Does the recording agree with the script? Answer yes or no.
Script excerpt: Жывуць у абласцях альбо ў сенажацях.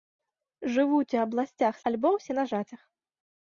yes